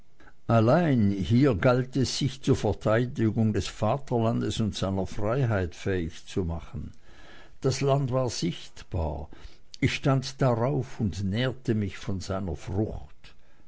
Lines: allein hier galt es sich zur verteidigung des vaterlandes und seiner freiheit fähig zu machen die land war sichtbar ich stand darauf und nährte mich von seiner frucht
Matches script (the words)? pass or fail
fail